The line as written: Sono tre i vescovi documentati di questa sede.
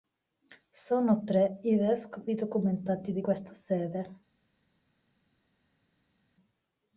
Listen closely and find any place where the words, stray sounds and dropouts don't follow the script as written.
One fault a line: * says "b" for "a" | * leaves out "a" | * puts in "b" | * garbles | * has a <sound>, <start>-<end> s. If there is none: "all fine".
all fine